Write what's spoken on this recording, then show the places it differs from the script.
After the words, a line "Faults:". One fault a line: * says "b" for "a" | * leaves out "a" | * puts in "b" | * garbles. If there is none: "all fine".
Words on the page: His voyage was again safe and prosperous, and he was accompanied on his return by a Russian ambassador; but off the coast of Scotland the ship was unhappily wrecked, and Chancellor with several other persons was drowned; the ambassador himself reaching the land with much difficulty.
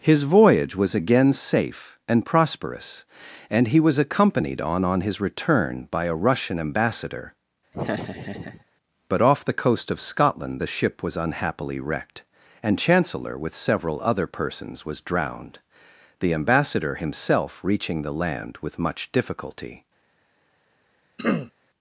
His voyage was again safe and prosperous, and he was accompanied on on his return by a Russian ambassador; but off the coast of Scotland the ship was unhappily wrecked, and Chancellor with several other persons was drowned; the ambassador himself reaching the land with much difficulty.
Faults:
* puts in "on"